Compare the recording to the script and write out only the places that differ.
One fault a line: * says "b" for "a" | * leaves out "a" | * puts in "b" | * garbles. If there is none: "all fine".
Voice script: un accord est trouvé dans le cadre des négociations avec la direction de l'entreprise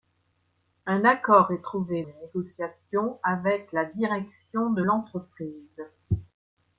* leaves out "dans le cadre"